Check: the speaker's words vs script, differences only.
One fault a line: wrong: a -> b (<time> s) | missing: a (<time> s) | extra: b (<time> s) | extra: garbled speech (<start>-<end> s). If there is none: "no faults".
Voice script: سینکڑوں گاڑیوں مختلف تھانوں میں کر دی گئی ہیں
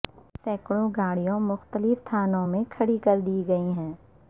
extra: کھڑی (2.7 s)